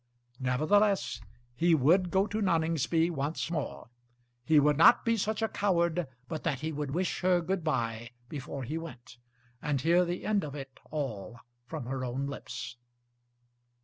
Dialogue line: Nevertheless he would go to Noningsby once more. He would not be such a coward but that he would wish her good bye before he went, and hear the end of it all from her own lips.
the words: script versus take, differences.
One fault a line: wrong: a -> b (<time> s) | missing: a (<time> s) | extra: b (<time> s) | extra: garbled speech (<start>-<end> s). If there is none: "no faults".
no faults